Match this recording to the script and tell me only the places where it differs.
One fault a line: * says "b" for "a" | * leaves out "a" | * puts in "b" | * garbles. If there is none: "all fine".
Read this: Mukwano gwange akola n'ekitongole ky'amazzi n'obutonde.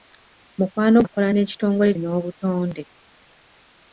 * leaves out "gwange"
* leaves out "ky'amazzi"